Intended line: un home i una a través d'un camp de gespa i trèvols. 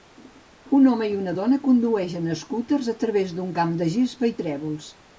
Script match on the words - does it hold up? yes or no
no